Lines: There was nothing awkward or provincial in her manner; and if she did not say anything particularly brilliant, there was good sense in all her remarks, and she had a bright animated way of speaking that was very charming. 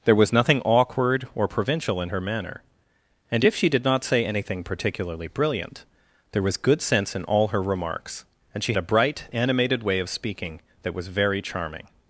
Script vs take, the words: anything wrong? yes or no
yes